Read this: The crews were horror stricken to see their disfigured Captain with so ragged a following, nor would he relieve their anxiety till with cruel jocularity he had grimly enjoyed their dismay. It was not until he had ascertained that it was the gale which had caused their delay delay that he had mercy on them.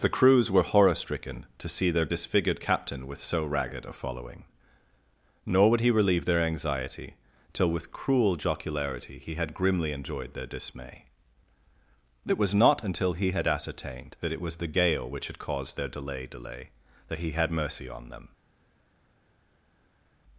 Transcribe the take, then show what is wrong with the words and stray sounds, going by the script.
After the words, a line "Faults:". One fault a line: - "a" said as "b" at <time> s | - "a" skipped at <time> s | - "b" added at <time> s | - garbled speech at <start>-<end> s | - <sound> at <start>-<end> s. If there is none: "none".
The crews were horror stricken to see their disfigured Captain with so ragged a following, nor would he relieve their anxiety till with cruel jocularity he had grimly enjoyed their dismay. It was not until he had ascertained that it was the gale which had caused their delay delay that he had mercy on them.
Faults:
none